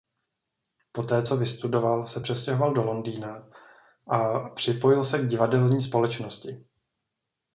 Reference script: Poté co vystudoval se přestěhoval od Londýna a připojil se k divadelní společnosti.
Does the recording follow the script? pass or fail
fail